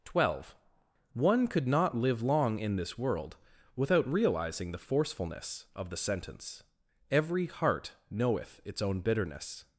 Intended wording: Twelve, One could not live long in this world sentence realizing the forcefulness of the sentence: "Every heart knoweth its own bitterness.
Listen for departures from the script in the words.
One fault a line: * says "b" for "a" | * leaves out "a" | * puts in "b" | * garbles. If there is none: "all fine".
* says "without" for "sentence"